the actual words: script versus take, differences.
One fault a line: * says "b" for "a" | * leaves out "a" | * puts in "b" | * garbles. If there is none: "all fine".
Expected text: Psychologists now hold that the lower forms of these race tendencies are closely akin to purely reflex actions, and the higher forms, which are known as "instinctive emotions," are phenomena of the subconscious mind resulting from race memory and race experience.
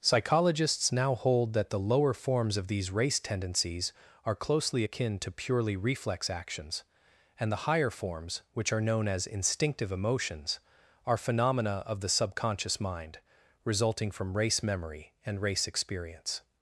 all fine